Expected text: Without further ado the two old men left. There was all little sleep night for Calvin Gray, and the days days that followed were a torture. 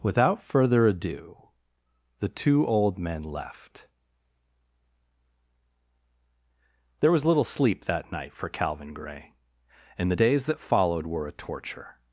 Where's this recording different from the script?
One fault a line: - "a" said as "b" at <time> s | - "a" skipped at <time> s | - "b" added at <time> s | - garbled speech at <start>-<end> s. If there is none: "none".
- "all" skipped at 7.2 s
- "that" added at 7.8 s
- "days" skipped at 10.4 s